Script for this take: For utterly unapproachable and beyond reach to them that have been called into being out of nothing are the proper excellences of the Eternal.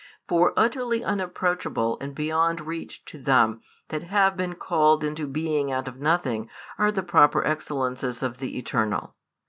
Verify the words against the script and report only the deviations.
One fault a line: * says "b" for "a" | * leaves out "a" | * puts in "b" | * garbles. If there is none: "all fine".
all fine